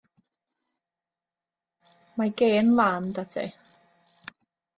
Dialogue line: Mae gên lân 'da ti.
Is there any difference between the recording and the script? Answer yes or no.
no